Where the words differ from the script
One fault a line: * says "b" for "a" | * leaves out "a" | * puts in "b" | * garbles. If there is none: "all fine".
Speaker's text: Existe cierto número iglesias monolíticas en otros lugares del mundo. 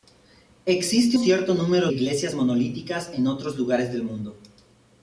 all fine